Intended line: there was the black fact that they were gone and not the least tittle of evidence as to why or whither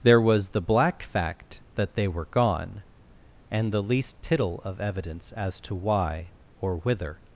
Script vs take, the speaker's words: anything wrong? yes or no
yes